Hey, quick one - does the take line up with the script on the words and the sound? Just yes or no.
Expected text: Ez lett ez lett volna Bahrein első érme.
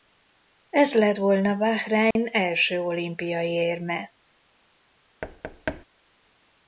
no